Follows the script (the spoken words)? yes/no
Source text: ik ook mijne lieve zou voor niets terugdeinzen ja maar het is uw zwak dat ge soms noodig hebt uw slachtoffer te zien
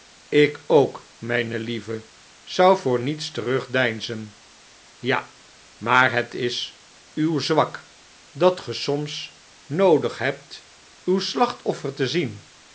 yes